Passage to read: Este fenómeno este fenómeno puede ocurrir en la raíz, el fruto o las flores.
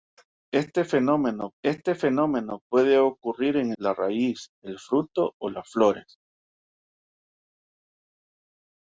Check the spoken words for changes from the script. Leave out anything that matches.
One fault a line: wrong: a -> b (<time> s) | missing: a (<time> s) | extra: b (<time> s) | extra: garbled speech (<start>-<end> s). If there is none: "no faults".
no faults